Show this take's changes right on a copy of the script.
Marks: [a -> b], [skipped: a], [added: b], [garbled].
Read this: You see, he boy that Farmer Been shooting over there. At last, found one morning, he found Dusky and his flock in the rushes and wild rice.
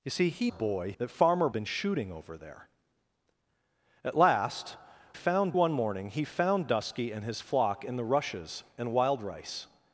You see, he boy that Farmer Been shooting over there. At last, found one morning, he found Dusky and his flock in the rushes and wild rice.